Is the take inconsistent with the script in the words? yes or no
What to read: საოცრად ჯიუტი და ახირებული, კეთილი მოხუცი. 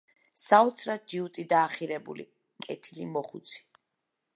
no